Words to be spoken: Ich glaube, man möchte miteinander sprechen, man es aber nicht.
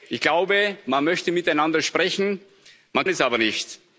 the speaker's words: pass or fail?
pass